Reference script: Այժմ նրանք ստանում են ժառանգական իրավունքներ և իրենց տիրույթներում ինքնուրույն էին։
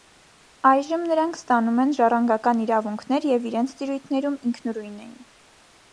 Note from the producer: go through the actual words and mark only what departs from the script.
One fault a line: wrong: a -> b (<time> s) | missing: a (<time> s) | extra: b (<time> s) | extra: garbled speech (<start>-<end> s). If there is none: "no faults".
no faults